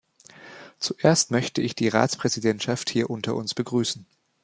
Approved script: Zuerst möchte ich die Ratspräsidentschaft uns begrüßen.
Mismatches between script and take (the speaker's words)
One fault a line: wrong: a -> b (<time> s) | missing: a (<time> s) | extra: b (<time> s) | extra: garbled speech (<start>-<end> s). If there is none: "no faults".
extra: hier unter (2.9 s)